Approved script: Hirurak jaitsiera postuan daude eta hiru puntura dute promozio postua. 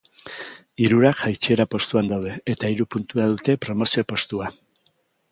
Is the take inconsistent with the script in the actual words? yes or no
no